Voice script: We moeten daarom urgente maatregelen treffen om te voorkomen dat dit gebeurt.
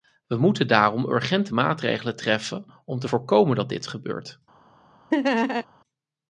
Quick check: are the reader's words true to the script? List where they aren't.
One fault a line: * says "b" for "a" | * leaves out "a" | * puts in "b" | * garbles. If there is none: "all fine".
all fine